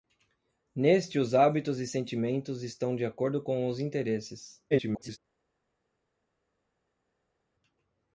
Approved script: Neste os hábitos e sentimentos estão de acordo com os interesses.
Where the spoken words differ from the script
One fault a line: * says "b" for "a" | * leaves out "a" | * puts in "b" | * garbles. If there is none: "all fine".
* garbles